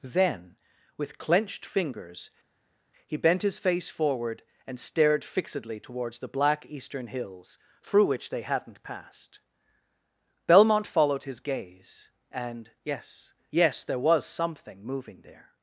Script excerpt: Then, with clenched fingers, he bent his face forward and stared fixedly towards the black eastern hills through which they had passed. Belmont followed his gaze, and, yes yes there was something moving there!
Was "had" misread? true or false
true